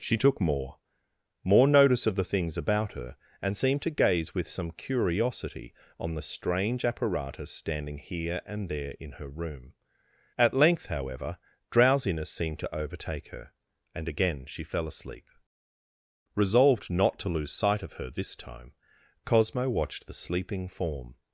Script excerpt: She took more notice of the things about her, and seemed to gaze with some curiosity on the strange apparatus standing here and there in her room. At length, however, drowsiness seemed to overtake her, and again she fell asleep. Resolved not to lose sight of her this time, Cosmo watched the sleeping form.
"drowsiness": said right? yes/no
yes